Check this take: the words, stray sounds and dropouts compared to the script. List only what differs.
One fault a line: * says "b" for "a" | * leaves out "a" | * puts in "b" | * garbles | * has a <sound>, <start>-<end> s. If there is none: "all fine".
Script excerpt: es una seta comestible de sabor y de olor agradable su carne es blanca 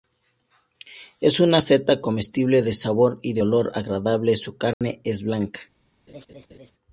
* has a dropout, 4.7-4.8 s
* has a laugh, 6.1-6.7 s